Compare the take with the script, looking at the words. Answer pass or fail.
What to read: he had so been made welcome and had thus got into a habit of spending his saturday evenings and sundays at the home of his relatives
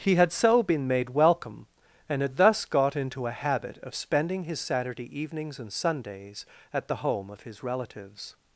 pass